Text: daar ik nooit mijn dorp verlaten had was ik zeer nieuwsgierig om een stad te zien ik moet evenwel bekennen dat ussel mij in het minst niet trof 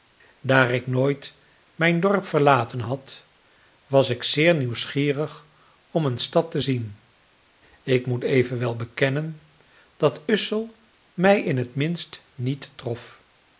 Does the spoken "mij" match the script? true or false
true